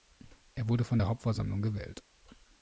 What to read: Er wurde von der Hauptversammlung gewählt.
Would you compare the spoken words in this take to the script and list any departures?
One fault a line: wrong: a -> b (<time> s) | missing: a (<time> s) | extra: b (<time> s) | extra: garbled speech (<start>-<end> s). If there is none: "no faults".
no faults